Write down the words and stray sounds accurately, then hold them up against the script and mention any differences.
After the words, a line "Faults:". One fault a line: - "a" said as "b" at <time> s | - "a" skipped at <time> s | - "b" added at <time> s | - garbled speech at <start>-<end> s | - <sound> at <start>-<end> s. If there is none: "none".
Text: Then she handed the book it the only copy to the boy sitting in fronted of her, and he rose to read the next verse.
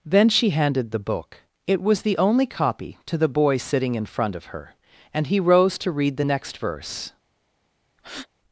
Then she handed the book it was the only copy to the boy sitting in front of her, and he rose to read the next verse.
Faults:
- "was" added at 1.8 s
- "fronted" said as "front" at 4.1 s
- breath at 8.0-8.3 s